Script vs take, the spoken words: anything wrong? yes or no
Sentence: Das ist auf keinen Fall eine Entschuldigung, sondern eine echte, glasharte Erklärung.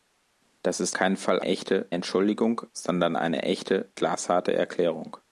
yes